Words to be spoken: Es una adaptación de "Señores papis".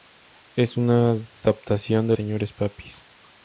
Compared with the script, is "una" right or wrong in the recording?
right